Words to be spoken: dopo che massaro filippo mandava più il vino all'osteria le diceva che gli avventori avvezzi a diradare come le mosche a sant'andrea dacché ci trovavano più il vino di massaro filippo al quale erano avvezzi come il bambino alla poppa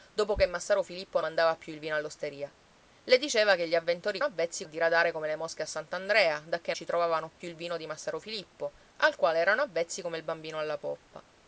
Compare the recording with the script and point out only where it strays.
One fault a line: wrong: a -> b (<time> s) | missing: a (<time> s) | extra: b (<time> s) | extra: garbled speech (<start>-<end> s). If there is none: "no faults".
no faults